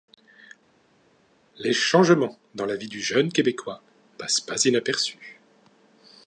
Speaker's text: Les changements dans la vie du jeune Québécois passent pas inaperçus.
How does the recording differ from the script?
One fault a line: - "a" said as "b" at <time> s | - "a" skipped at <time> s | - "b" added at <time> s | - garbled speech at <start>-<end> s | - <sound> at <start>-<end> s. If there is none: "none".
none